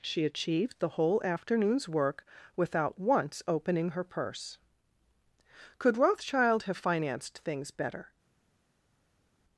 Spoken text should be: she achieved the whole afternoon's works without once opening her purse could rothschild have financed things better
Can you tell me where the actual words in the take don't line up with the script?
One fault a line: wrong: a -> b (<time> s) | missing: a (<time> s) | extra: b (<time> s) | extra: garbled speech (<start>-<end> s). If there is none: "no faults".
wrong: works -> work (1.9 s)